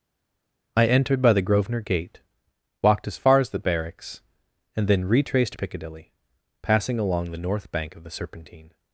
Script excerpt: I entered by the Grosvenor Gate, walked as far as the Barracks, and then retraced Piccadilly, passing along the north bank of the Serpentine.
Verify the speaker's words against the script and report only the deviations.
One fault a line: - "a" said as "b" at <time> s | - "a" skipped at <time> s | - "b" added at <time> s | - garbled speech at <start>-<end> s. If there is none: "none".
none